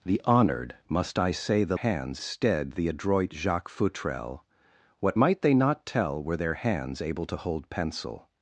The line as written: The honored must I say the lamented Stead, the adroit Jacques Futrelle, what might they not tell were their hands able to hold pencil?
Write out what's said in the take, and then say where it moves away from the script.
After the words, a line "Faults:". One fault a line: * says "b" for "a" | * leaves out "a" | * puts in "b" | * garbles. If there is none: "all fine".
The honored must I say the hands Stead, the adroit Jacques Futrelle, what might they not tell were their hands able to hold pencil?
Faults:
* says "hands" for "lamented"